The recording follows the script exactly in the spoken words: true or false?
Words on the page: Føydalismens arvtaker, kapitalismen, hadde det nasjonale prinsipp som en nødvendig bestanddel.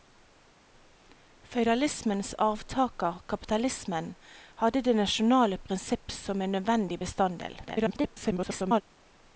false